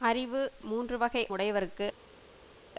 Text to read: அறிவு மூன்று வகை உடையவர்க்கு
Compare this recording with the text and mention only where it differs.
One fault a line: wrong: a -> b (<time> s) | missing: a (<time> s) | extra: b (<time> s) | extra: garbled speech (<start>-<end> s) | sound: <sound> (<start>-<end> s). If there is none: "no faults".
no faults